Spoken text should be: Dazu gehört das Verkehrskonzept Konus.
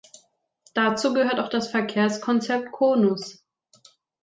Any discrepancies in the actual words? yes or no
yes